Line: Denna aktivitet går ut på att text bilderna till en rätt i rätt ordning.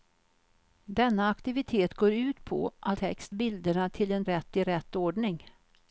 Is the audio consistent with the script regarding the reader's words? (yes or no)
yes